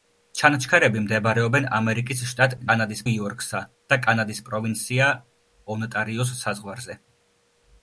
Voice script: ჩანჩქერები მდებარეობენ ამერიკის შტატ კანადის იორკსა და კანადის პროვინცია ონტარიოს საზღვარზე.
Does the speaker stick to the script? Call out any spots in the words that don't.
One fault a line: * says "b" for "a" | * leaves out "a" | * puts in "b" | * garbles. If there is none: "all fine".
all fine